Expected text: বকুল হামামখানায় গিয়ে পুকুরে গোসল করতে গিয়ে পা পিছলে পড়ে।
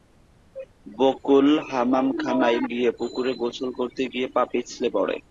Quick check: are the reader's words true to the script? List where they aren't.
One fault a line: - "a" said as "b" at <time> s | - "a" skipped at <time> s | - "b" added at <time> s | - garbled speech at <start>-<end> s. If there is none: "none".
none